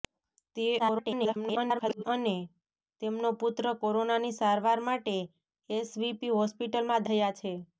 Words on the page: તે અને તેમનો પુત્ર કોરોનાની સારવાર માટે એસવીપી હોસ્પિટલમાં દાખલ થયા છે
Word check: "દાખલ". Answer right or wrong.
wrong